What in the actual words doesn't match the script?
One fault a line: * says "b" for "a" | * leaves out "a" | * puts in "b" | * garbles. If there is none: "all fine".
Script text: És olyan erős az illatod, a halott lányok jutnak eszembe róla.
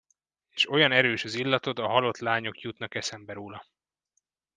all fine